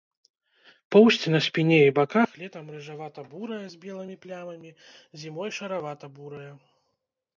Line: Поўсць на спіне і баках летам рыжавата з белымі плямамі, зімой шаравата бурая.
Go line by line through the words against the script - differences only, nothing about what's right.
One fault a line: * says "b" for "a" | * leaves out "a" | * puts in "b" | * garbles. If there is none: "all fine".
* puts in "бурая"